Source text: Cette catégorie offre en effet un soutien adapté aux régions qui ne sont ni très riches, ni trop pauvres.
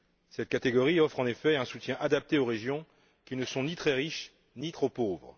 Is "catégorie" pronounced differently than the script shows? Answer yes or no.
no